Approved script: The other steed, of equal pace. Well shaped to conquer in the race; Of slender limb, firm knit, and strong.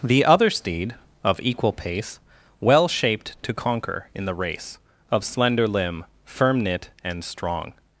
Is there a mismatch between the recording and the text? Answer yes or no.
no